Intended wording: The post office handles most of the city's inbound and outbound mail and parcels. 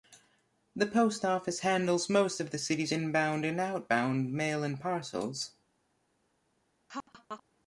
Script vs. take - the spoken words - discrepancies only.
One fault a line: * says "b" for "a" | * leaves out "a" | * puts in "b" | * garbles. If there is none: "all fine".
all fine